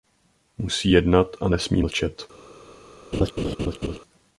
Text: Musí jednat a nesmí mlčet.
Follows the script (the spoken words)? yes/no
yes